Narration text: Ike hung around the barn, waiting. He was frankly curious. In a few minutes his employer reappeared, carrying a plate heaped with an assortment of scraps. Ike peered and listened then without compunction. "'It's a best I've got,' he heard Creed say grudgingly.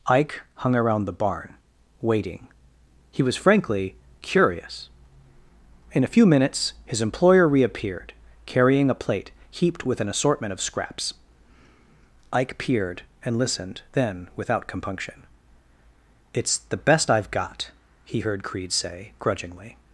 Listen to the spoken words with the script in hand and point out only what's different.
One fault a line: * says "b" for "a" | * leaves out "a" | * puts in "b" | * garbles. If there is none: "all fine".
* says "the" for "a"